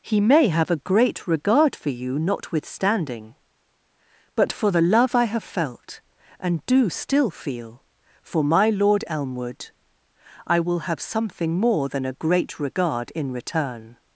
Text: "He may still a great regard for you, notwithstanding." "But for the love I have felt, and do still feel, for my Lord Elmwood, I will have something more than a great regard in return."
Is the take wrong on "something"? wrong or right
right